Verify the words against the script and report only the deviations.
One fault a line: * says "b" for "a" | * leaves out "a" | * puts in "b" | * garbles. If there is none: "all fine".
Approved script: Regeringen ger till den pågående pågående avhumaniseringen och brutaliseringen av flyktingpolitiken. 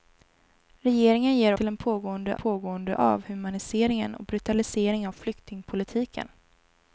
all fine